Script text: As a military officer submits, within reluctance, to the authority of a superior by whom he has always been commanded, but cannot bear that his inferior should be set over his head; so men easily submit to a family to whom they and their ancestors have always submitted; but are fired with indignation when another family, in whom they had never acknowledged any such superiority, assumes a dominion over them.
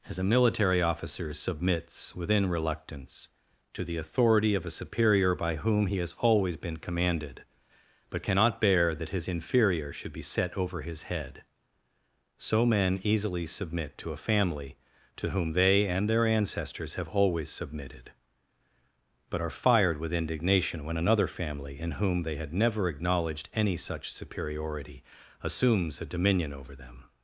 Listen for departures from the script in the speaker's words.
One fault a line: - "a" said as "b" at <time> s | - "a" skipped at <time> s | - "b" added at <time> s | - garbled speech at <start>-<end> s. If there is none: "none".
none